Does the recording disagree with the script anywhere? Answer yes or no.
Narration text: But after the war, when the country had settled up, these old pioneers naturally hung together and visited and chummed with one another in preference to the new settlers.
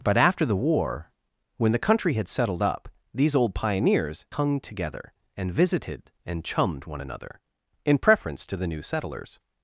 yes